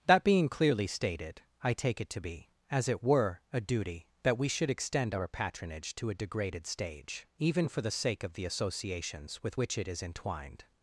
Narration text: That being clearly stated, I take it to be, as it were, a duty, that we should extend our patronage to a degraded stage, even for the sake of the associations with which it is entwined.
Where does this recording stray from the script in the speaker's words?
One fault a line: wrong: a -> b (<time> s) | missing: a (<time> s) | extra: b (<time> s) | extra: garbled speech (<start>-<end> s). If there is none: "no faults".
no faults